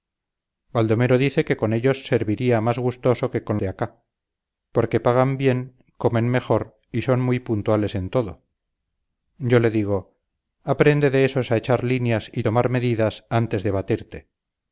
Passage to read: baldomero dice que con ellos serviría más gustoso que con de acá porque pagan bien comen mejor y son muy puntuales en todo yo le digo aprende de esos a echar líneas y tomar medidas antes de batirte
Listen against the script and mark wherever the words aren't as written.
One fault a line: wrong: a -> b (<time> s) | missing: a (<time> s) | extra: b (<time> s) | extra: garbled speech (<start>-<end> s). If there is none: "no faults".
no faults